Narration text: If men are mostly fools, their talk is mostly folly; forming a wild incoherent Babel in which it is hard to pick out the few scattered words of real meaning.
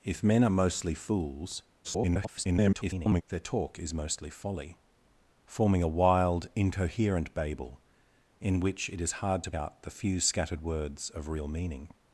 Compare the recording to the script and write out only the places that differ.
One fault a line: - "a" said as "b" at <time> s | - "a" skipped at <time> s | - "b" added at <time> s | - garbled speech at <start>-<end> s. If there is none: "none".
- garbled speech at 1.8-3.2 s
- "pick" skipped at 9.5 s